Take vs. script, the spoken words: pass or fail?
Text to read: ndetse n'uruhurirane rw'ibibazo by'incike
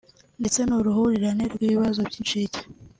pass